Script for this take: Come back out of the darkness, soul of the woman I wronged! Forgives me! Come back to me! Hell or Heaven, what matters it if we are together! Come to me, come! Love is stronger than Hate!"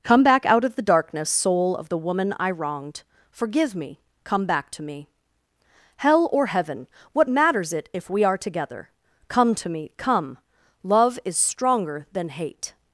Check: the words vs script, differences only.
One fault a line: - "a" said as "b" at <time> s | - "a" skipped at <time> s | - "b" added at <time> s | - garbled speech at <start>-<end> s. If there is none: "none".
- "Forgives" said as "Forgive" at 3.3 s